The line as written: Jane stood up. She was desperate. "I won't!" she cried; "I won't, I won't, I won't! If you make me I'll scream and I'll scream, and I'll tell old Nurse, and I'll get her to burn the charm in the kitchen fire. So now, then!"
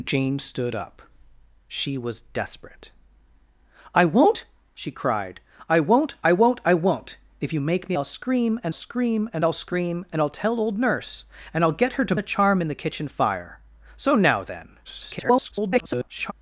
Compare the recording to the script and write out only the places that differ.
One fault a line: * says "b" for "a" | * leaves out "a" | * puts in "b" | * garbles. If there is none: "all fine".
* puts in "scream and"
* leaves out "burn"
* garbles